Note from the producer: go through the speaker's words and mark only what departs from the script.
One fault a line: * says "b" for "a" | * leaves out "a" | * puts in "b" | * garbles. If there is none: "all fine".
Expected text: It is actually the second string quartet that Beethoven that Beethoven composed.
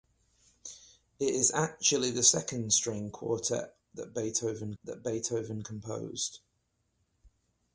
all fine